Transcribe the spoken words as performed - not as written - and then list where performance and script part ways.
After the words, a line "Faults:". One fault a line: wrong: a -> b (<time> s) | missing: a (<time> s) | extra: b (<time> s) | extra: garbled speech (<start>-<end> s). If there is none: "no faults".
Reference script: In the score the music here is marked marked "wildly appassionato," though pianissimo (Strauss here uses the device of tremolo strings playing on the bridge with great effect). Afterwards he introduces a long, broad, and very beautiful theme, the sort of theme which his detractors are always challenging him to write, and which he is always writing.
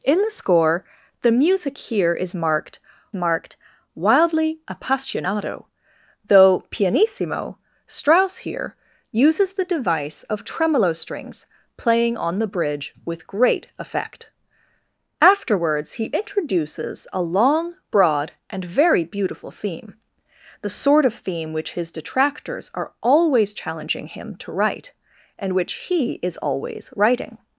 In the score the music here is marked marked "wildly appassionato," though pianissimo (Strauss here uses the device of tremolo strings playing on the bridge with great effect). Afterwards he introduces a long, broad, and very beautiful theme, the sort of theme which his detractors are always challenging him to write, and which he is always writing.
Faults:
no faults